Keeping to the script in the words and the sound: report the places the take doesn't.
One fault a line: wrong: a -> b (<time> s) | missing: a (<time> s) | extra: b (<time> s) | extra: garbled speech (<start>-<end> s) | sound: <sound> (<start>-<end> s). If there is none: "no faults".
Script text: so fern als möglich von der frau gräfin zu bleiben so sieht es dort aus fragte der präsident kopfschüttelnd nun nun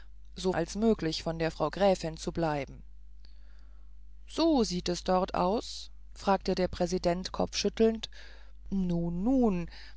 missing: fern (0.5 s)